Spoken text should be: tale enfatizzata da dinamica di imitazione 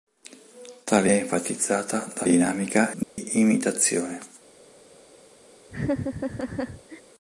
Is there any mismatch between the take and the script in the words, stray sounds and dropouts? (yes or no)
yes